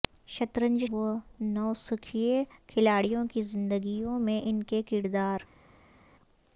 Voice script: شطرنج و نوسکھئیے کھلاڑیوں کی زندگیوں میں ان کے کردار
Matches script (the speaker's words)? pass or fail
pass